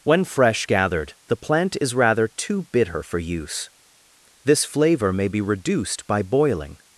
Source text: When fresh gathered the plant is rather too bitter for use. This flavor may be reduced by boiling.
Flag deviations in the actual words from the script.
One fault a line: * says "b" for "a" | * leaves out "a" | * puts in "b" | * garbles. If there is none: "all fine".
all fine